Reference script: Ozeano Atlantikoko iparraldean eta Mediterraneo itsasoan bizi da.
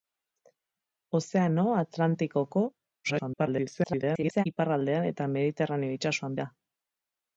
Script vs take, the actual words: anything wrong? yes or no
yes